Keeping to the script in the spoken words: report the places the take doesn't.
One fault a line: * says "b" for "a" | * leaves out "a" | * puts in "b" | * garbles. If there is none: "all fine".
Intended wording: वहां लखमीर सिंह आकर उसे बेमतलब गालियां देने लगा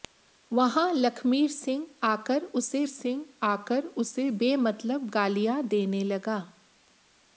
* puts in "सिंह आकर उसे"